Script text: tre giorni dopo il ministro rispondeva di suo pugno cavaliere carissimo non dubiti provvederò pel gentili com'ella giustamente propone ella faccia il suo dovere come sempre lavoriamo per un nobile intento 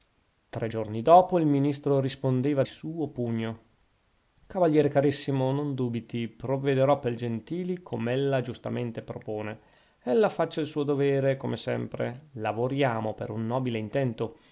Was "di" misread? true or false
true